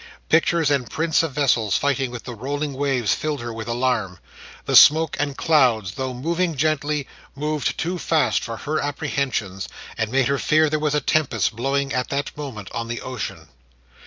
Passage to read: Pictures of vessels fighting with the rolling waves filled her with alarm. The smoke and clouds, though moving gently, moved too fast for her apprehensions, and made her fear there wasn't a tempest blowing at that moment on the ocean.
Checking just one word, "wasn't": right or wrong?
wrong